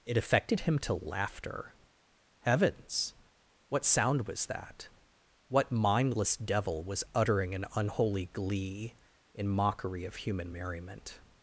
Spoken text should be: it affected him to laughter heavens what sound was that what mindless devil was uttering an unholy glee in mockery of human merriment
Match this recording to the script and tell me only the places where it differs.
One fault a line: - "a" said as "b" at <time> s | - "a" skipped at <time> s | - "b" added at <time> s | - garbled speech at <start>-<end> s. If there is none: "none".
none